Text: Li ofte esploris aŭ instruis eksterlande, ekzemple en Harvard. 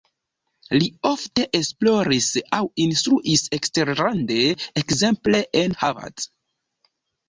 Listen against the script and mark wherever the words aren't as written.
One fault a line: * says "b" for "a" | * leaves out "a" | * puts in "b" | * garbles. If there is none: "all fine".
all fine